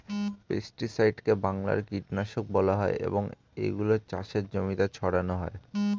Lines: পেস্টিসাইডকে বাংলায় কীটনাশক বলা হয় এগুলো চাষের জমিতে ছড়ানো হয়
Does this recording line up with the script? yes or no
no